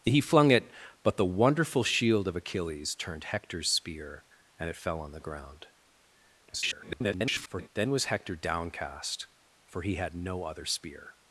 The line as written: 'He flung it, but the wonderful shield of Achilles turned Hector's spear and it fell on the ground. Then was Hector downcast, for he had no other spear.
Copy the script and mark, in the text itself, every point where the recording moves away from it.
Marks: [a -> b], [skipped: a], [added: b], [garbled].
'He flung it, but the wonderful shield of Achilles turned Hector's spear and it fell on the ground. [garbled] Then was Hector downcast, for he had no other spear.